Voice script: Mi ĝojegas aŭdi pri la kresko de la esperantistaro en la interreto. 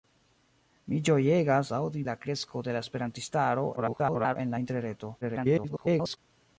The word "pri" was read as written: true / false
false